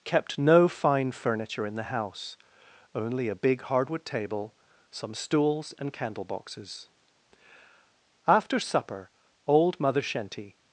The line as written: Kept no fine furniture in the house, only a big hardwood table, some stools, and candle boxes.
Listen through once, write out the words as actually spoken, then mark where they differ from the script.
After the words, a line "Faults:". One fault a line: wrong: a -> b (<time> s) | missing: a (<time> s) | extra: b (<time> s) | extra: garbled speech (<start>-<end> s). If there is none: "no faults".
Kept no fine furniture in the house, only a big hardwood table, some stools, and candle boxes. After supper old Mother Shenty
Faults:
extra: After supper old Mother Shenty (8.3 s)